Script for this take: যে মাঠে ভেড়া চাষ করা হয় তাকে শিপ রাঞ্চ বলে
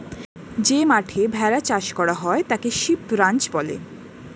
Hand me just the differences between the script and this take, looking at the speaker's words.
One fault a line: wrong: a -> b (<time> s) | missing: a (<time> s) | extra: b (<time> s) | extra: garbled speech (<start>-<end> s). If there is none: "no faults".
no faults